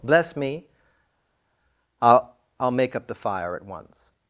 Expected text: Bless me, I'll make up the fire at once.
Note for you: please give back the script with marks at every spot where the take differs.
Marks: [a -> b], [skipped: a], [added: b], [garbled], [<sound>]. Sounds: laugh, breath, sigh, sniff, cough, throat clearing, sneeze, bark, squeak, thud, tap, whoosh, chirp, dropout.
Bless me, I'll [added: I'll] make up the fire at once.